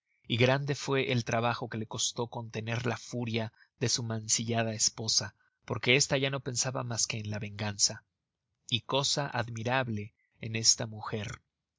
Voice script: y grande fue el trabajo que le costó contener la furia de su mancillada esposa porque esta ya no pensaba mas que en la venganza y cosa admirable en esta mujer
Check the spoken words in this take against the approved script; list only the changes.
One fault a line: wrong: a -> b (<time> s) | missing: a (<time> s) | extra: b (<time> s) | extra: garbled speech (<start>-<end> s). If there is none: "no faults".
no faults